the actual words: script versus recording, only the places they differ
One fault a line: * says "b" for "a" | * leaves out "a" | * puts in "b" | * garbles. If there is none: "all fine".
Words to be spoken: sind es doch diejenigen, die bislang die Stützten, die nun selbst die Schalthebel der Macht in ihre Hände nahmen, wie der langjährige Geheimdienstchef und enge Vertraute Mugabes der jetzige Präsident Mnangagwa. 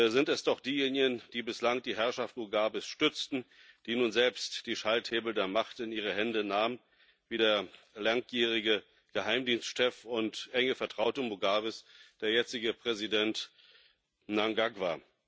* puts in "Herrschaft Mugabes"